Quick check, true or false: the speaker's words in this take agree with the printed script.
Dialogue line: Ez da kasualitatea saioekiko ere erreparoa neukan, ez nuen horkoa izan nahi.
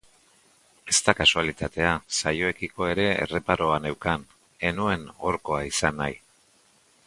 true